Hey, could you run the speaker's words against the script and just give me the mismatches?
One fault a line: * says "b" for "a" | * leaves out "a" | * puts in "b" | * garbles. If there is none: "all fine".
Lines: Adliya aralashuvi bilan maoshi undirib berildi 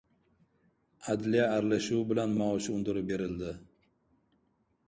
all fine